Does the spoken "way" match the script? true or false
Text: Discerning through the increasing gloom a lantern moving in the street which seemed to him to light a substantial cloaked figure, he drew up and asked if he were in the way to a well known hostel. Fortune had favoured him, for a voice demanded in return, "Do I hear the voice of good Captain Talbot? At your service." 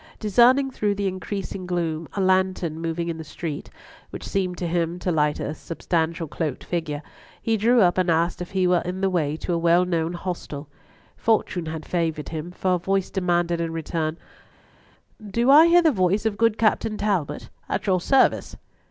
true